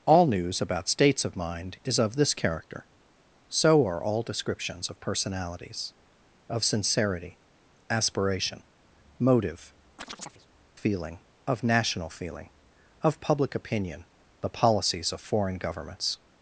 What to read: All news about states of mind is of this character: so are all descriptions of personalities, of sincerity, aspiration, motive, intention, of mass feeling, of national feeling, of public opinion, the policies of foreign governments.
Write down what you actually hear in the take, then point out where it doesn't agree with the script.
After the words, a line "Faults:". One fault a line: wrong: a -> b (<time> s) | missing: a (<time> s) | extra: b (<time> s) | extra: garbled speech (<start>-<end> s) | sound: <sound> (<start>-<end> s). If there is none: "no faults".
All news about states of mind is of this character: so are all descriptions of personalities, of sincerity, aspiration, motive, feeling, of national feeling, of public opinion, the policies of foreign governments.
Faults:
missing: intention of mass (9.7 s)
sound: chirp (10.0-10.5 s)